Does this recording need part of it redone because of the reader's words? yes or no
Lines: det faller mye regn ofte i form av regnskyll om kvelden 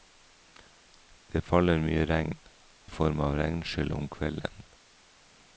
yes